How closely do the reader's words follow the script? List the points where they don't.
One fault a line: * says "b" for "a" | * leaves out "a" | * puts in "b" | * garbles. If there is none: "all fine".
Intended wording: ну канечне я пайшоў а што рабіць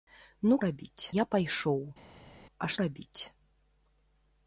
* says "рабіць" for "канечне"
* leaves out "што"